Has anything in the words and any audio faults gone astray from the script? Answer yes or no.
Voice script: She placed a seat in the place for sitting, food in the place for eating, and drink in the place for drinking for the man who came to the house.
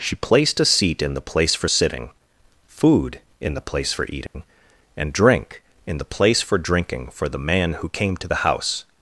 yes